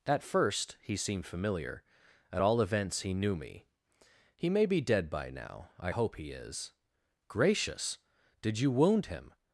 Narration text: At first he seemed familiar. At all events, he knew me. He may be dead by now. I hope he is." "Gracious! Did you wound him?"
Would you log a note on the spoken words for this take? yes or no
no